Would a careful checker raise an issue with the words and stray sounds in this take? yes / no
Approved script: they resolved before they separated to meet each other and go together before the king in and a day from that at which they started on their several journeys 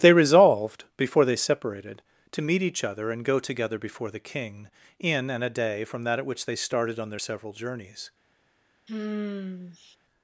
yes